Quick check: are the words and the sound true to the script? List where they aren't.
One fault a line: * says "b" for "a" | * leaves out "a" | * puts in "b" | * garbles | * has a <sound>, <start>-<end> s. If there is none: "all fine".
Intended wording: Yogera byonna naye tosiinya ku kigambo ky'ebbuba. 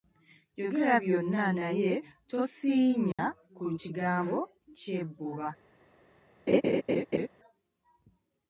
* has a dropout, 3.1-3.2 s
* has a laugh, 6.5-7.3 s